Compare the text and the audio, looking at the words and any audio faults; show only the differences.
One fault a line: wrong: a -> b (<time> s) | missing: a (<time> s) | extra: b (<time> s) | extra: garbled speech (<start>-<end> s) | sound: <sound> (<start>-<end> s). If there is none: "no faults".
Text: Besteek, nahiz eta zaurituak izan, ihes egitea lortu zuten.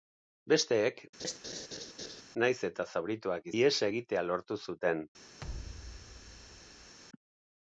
sound: laugh (1.2-2.2 s)
missing: izan (3.5 s)
sound: thud (5.4-7.0 s)